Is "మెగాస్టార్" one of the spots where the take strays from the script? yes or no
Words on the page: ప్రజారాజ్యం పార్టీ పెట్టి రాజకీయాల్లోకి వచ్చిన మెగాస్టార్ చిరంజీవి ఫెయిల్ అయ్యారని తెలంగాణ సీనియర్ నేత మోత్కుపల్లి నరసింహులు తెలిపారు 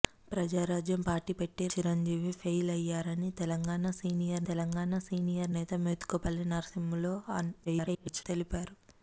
yes